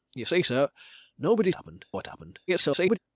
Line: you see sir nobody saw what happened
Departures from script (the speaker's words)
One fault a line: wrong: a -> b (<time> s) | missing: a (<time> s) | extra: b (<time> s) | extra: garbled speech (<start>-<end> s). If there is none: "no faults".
wrong: saw -> happened (1.5 s)
extra: garbled speech (2.5-3.0 s)